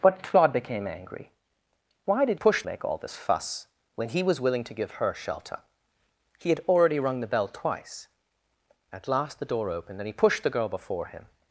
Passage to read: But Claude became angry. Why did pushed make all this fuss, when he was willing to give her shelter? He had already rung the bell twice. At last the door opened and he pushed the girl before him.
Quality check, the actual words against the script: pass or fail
pass